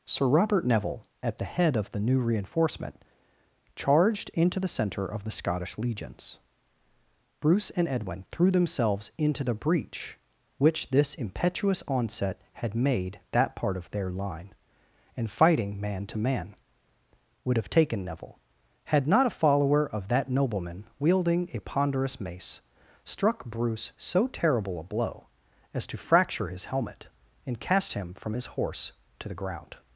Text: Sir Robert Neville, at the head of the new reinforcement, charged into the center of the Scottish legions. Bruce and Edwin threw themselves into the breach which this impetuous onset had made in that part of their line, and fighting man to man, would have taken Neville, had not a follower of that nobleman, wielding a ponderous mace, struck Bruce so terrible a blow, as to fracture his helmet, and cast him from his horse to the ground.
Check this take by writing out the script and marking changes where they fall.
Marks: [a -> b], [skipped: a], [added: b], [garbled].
Sir Robert Neville, at the head of the new reinforcement, charged into the center of the Scottish legions. Bruce and Edwin threw themselves into the breach which this impetuous onset had made [skipped: in] that part of their line, and fighting man to man, would have taken Neville, had not a follower of that nobleman, wielding a ponderous mace, struck Bruce so terrible a blow, as to fracture his helmet, and cast him from his horse to the ground.